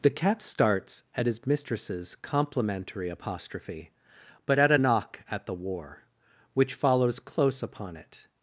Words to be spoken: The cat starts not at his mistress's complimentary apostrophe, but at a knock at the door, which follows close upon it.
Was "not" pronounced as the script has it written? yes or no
no